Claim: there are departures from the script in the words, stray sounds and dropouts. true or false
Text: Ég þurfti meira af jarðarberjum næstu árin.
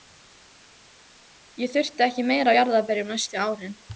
true